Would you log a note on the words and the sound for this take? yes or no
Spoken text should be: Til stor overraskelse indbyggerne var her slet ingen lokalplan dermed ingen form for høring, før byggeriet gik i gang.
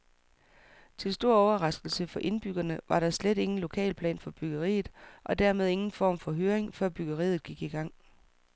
yes